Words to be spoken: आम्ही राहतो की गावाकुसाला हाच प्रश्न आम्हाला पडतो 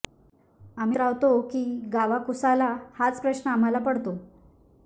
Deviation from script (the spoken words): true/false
false